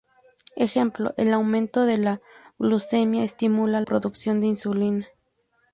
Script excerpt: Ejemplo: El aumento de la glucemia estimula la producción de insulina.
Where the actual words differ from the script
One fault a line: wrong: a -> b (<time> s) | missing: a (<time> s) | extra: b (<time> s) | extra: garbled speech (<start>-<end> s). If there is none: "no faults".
missing: la (3.8 s)